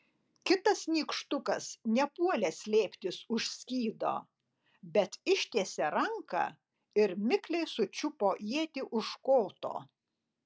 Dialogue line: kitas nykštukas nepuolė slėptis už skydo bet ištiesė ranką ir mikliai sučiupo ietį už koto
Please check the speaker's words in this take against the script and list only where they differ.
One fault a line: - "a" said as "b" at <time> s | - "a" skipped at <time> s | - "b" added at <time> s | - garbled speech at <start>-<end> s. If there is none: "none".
none